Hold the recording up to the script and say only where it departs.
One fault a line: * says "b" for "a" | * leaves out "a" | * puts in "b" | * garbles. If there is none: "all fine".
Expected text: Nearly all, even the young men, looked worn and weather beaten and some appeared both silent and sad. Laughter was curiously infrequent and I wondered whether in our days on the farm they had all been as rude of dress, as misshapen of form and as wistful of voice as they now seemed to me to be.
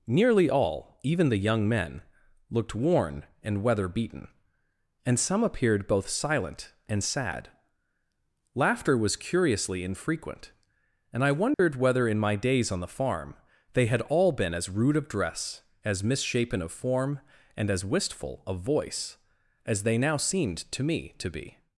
* says "my" for "our"